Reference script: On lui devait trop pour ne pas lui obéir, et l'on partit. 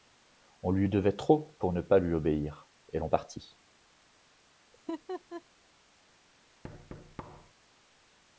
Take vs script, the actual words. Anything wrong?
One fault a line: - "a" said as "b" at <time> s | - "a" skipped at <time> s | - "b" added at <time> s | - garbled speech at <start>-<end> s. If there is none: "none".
none